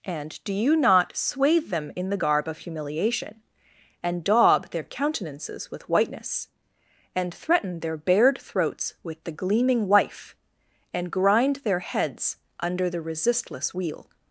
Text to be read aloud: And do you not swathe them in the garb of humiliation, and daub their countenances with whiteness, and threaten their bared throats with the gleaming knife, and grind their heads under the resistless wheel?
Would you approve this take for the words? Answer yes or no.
no